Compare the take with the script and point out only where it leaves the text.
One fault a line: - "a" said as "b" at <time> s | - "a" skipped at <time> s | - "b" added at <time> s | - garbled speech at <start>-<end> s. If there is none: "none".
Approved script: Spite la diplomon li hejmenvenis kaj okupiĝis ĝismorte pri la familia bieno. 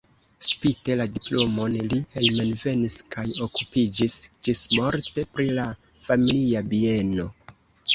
none